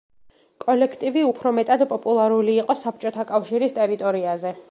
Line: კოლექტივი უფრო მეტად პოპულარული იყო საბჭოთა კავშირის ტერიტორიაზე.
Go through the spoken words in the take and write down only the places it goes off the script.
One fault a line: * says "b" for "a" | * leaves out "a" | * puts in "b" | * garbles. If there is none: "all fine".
all fine